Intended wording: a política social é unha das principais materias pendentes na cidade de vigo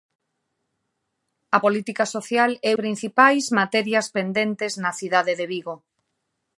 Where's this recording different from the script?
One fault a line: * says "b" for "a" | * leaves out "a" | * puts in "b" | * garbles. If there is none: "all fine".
* leaves out "unha das"